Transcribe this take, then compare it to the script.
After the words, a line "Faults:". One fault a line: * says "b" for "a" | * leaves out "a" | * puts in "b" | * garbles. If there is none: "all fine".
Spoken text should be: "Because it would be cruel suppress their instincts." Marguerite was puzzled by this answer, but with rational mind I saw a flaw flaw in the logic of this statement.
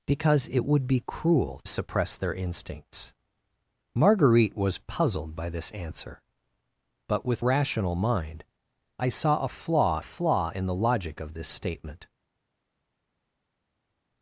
"Because it would be cruel suppress their instincts." Marguerite was puzzled by this answer, but with rational mind I saw a flaw flaw in the logic of this statement.
Faults:
all fine